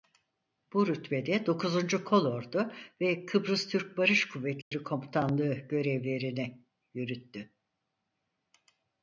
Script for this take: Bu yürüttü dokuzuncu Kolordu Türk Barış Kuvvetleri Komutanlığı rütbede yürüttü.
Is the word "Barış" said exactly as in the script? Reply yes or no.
yes